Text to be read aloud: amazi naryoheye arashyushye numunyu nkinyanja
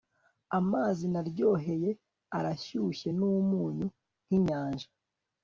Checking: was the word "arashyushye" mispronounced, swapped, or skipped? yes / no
no